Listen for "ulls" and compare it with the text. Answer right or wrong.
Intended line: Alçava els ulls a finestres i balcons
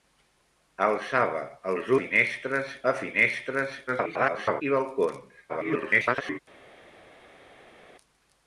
wrong